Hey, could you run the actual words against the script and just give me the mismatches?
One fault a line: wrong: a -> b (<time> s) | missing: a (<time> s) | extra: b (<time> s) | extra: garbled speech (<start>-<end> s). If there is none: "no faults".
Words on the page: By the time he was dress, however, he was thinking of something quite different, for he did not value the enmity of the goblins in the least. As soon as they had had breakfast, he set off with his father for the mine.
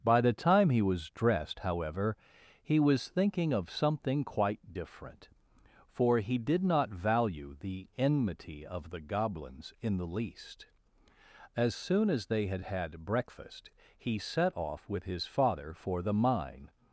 wrong: dress -> dressed (1.1 s)